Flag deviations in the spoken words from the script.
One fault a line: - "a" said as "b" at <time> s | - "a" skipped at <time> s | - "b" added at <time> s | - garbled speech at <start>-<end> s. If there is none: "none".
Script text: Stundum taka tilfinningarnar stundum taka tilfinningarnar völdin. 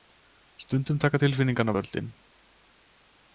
- "stundum taka tilfinningarnar" skipped at 1.7 s